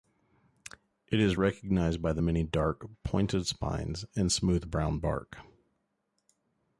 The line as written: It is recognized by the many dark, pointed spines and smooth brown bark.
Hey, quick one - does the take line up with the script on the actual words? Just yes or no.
yes